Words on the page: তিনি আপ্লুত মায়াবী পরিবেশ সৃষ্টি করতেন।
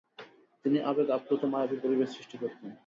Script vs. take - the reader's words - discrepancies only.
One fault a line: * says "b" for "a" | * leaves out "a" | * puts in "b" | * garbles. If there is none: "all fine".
* puts in "আবেগ"